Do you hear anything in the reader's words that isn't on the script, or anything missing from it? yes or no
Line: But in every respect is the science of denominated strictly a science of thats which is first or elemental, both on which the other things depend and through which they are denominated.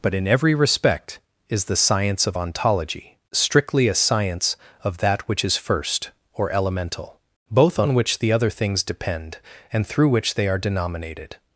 yes